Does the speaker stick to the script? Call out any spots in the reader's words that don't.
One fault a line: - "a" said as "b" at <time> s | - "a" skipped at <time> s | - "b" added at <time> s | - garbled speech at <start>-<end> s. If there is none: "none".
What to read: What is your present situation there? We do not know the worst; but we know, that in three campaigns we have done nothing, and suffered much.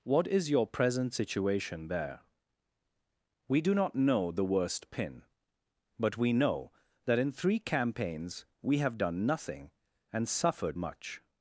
- "pin" added at 4.9 s